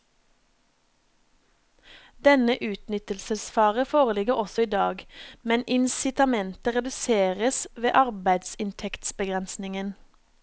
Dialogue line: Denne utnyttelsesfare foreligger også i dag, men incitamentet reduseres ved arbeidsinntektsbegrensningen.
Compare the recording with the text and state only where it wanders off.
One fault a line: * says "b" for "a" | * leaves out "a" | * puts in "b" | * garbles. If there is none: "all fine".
all fine